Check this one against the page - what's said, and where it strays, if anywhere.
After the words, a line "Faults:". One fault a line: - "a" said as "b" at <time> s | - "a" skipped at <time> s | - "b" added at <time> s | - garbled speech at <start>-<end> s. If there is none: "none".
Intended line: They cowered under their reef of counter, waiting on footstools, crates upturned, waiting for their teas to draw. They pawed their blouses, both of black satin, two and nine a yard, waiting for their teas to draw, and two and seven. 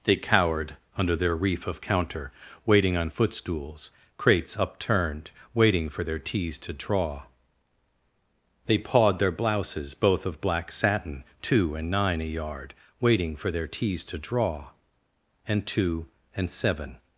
They cowered under their reef of counter, waiting on footstools, crates upturned, waiting for their teas to draw. They pawed their blouses, both of black satin, two and nine a yard, waiting for their teas to draw, and two and seven.
Faults:
none